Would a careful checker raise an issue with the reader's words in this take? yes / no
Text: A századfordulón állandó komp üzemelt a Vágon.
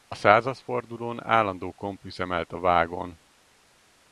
no